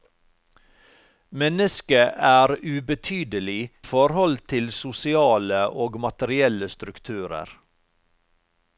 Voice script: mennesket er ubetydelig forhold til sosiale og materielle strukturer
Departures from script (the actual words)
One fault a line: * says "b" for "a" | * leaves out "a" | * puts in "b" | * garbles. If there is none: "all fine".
all fine